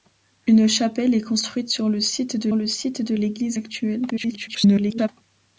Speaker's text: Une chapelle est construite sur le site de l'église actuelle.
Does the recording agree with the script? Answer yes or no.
no